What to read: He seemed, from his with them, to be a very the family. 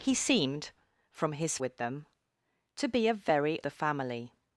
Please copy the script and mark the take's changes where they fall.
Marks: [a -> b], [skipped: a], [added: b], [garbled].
He seemed, from his with them, to be a very the family.